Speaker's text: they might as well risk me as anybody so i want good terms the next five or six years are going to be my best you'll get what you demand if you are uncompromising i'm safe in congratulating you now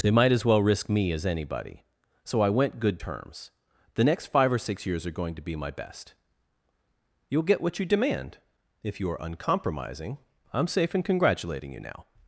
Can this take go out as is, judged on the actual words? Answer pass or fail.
fail